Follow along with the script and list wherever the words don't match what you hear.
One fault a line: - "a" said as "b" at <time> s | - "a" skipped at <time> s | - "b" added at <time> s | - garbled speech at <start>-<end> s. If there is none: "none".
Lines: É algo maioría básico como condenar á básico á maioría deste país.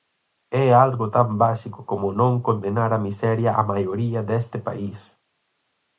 - "maioría" said as "tan" at 1.1 s
- "non" added at 2.2 s
- "básico" said as "miseria" at 3.1 s